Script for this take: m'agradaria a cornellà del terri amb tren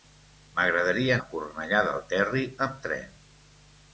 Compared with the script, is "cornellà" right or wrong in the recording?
right